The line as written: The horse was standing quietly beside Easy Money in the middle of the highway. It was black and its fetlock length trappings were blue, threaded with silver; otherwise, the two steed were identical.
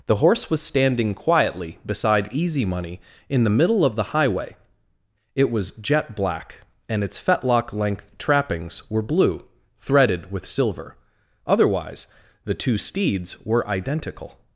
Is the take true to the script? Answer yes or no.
no